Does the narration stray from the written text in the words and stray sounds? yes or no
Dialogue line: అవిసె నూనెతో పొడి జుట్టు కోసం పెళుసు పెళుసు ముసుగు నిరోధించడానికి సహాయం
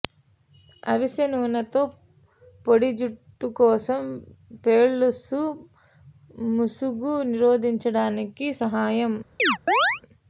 yes